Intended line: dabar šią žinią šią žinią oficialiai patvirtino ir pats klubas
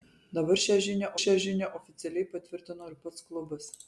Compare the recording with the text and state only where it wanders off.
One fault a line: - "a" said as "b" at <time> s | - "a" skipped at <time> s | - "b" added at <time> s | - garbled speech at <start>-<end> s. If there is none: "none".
none